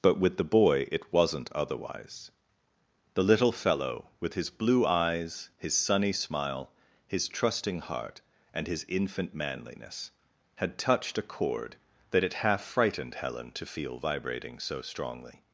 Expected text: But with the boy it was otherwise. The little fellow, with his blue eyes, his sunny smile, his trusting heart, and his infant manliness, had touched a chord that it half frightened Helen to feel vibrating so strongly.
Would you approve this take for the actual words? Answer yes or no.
no